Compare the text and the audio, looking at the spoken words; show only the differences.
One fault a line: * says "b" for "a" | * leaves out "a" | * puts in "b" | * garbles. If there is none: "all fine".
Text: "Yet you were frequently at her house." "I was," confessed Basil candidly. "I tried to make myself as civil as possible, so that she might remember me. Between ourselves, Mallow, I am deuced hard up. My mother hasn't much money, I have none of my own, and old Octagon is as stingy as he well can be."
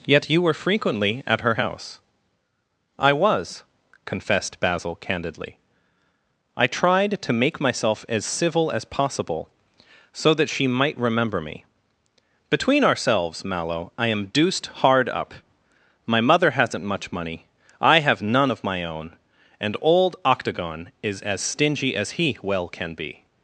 all fine